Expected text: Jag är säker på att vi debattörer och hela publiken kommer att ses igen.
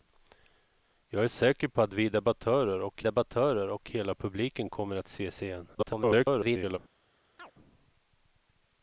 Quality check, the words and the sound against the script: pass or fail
fail